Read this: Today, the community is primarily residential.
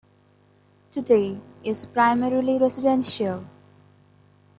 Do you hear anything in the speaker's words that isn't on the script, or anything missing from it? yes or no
yes